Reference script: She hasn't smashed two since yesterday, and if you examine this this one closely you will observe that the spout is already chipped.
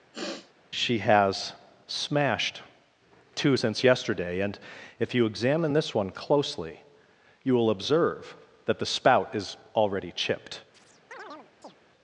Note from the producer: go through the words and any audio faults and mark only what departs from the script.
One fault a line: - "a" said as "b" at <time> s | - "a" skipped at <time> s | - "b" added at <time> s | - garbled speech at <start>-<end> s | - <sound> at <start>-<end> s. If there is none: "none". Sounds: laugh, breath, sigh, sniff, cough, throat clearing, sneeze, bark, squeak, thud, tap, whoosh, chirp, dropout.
- sniff at 0.1-0.5 s
- "hasn't" said as "has" at 1.0 s
- "this" skipped at 5.9 s
- chirp at 10.7-11.8 s